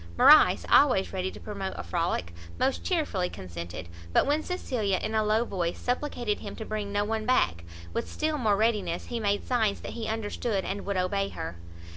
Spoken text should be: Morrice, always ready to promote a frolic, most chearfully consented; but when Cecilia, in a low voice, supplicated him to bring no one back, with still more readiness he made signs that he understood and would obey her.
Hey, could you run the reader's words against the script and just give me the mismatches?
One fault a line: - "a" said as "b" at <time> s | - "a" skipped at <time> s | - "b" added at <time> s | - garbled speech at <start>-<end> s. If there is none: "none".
none